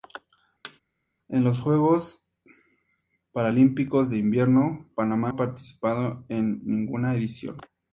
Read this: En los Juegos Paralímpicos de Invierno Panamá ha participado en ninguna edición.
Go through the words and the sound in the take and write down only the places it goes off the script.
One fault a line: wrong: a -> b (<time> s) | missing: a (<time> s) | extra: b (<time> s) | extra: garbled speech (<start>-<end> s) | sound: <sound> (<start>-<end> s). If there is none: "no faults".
sound: thud (0.6-0.8 s)